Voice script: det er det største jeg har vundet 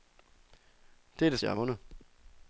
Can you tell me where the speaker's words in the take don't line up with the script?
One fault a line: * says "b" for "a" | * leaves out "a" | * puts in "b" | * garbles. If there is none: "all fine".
* leaves out "største"